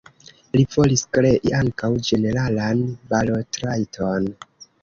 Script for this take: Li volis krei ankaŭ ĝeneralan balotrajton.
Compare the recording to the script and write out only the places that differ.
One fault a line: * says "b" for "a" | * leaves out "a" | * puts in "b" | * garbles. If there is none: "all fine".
all fine